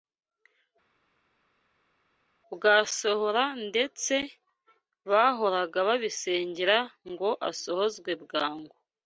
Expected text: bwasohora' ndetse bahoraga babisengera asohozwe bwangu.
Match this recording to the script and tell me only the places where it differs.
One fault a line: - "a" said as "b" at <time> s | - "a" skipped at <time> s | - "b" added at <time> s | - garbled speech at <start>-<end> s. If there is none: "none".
- "ngo" added at 7.1 s